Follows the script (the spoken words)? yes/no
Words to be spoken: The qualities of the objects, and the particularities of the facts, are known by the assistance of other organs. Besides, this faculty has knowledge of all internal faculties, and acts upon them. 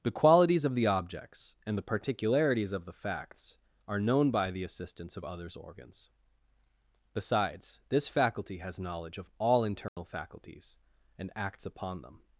no